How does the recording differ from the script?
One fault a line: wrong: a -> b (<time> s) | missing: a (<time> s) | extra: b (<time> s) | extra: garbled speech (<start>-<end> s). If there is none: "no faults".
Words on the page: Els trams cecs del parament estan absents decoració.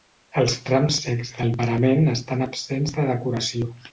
extra: de (3.0 s)